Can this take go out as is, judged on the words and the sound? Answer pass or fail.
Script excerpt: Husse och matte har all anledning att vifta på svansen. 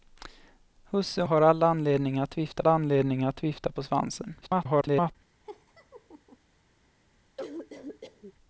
fail